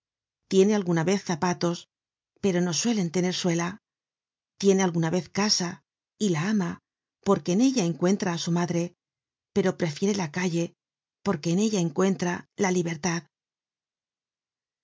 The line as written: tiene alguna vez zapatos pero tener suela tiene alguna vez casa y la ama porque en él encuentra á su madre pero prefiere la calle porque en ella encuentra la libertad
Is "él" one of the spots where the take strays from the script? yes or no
yes